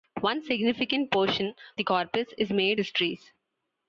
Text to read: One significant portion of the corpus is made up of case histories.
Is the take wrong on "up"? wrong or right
wrong